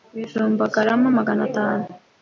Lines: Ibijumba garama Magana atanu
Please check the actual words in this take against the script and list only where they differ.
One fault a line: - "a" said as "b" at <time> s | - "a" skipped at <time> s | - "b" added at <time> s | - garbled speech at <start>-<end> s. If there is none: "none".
none